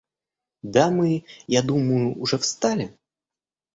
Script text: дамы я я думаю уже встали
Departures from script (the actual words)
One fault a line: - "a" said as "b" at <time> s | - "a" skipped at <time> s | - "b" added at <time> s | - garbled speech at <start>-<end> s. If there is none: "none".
- "я" skipped at 1.6 s